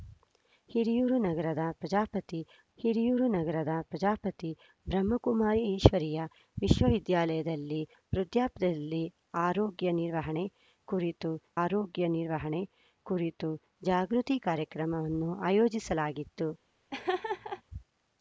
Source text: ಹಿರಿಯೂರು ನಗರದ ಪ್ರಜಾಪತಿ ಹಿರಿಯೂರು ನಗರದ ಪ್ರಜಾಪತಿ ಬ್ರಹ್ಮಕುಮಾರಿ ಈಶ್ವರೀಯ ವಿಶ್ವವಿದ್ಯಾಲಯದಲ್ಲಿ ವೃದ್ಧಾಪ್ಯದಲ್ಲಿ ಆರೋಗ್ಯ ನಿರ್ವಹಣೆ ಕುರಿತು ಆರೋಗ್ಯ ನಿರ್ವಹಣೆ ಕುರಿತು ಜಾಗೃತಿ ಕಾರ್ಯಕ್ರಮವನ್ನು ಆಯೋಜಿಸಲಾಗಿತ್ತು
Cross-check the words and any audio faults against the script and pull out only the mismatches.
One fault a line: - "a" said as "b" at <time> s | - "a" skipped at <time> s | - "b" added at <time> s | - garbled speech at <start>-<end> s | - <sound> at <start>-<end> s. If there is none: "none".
- laugh at 16.9-17.6 s